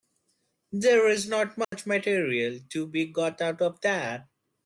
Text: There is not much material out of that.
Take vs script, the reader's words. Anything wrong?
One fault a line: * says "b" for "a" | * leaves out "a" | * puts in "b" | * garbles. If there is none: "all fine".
* puts in "to be got"